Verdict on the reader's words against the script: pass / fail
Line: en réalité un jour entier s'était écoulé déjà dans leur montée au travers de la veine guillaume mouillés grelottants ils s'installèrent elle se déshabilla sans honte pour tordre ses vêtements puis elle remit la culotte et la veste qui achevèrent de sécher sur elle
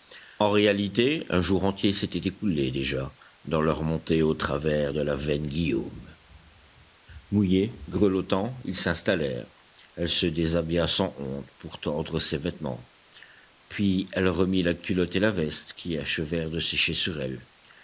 pass